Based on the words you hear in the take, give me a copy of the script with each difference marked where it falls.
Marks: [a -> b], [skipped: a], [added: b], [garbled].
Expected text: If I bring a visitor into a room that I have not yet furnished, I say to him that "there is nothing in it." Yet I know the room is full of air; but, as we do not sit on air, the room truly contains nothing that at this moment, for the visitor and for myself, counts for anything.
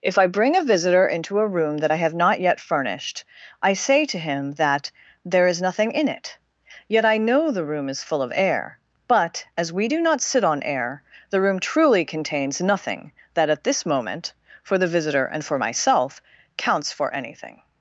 If I bring a visitor into a room that I have not yet furnished, I say to him that "there is nothing in it." Yet I know the room is full of air; but, as we do not sit on air, the room truly contains nothing that at this moment, for the visitor and for myself, counts for anything.